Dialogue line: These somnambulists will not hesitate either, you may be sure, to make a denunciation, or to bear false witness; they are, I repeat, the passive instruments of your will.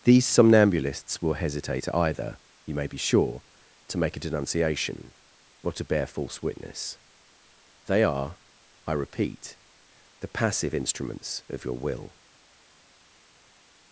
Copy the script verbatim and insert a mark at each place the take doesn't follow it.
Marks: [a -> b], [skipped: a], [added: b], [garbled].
These somnambulists will [skipped: not] hesitate either, you may be sure, to make a denunciation, or to bear false witness; they are, I repeat, the passive instruments of your will.